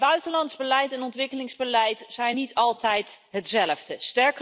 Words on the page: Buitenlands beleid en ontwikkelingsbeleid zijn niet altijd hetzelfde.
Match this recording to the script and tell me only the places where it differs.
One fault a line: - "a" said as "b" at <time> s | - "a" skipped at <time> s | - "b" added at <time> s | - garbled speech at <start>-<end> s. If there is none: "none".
none